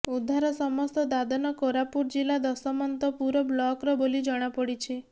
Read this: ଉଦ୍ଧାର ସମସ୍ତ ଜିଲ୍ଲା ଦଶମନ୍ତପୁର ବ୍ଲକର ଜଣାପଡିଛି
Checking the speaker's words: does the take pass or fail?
fail